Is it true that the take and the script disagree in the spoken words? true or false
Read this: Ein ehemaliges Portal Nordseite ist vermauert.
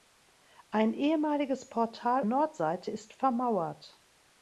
false